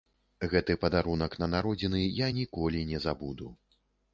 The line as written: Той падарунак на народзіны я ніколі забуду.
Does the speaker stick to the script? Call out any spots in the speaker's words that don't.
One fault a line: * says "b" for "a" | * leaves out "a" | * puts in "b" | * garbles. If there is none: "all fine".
* says "Гэты" for "Той"
* puts in "не"